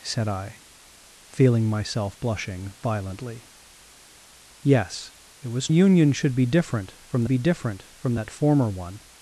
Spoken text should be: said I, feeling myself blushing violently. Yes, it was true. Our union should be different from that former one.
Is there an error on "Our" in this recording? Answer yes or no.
yes